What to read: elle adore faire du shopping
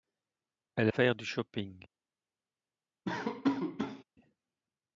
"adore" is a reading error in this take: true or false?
true